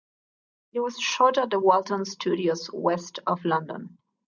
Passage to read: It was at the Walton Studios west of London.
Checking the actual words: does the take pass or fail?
fail